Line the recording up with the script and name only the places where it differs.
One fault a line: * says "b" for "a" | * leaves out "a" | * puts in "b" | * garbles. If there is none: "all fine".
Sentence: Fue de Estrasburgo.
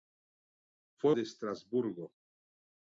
all fine